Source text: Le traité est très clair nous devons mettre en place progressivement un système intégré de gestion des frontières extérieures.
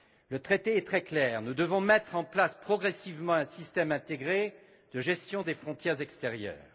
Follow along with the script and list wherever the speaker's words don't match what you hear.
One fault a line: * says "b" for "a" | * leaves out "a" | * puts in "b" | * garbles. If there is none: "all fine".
all fine